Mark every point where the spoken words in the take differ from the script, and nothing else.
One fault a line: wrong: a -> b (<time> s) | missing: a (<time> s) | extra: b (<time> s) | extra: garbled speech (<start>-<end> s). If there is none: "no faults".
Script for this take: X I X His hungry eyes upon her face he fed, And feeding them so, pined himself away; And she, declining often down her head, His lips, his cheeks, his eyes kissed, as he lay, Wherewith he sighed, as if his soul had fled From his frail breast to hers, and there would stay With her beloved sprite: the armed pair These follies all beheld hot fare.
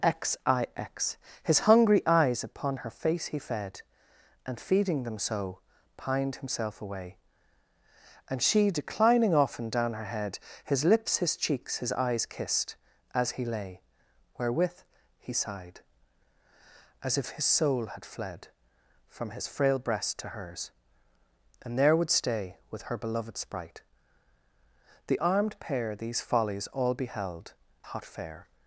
no faults